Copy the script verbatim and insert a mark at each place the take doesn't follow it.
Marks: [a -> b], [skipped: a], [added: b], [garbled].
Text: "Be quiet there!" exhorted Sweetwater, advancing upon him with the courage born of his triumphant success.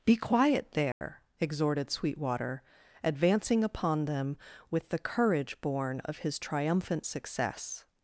"Be quiet there!" exhorted Sweetwater, advancing upon [him -> them] with the courage born of his triumphant success.